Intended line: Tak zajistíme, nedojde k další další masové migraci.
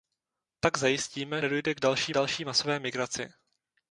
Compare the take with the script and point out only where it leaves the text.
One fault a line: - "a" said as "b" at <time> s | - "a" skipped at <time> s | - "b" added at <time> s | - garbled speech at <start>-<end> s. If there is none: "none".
none